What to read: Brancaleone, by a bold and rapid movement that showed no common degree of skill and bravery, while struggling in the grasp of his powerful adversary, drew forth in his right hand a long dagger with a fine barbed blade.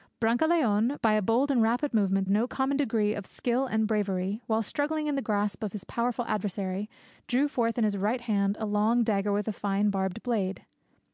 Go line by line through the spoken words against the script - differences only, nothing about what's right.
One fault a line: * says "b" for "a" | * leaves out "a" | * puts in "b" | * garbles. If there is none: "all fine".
* leaves out "that showed"